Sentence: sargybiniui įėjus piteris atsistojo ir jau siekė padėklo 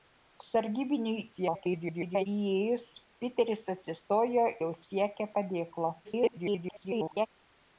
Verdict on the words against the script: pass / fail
fail